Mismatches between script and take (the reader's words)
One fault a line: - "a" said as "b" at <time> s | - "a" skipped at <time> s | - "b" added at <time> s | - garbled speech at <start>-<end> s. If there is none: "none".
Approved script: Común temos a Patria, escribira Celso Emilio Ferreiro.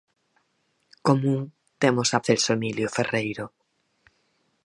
- "Patria escribira" skipped at 2.2 s